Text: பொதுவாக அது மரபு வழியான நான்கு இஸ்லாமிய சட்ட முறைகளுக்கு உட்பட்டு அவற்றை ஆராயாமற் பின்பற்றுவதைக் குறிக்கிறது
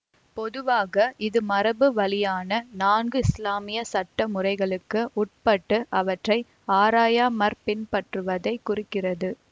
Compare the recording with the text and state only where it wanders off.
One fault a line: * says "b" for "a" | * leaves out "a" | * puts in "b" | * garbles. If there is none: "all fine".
* says "இது" for "அது"